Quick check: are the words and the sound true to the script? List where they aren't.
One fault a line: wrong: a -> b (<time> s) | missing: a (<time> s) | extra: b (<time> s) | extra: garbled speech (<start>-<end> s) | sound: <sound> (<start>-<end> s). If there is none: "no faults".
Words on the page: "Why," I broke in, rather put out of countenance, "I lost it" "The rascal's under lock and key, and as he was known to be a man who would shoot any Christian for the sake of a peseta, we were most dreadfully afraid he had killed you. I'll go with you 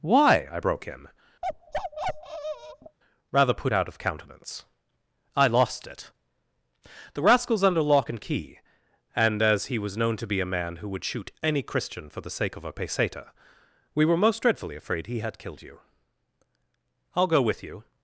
sound: bark (1.4-3.0 s)